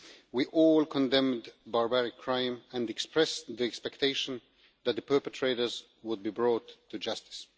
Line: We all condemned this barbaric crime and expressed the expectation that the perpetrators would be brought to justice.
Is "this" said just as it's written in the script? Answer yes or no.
no